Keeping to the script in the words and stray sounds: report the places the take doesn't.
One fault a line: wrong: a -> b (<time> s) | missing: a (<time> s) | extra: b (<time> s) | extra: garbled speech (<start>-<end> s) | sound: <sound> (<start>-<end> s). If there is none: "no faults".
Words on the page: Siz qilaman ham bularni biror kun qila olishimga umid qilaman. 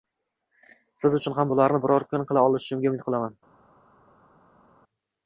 wrong: qilaman -> uchun (1.2 s)